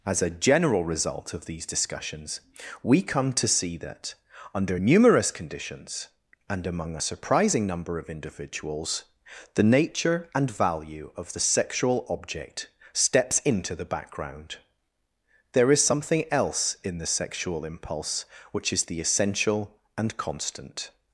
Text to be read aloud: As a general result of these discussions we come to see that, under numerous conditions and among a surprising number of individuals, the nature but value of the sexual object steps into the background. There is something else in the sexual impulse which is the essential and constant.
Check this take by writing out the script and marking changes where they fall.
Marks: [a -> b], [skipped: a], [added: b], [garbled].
As a general result of these discussions we come to see that, under numerous conditions and among a surprising number of individuals, the nature [but -> and] value of the sexual object steps into the background. There is something else in the sexual impulse which is the essential and constant.